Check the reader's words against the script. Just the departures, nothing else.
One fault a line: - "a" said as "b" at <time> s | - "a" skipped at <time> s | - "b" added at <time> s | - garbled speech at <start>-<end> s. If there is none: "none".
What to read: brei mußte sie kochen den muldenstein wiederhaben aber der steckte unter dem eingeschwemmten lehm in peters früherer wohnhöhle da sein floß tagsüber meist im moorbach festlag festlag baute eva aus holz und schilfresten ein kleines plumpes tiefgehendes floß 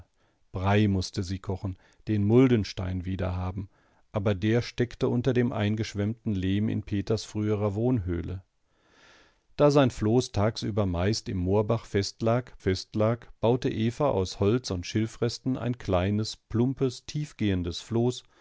none